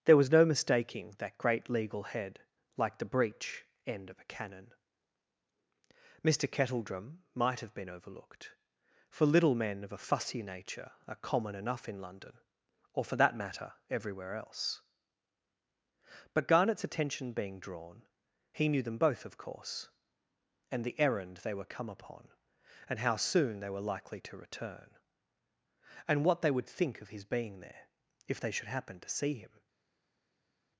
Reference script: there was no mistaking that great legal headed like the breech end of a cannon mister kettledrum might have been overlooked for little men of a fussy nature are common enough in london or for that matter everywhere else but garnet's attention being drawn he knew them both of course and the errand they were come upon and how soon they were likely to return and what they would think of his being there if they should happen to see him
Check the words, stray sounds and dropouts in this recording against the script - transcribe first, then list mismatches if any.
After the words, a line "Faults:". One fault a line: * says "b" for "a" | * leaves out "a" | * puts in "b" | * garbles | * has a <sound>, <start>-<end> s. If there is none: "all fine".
there was no mistaking that great legal head like the breech end of a cannon mister kettledrum might have been overlooked for little men of a fussy nature are common enough in london or for that matter everywhere else but garnet's attention being drawn he knew them both of course and the errand they were come upon and how soon they were likely to return and what they would think of his being there if they should happen to see him
Faults:
* says "head" for "headed"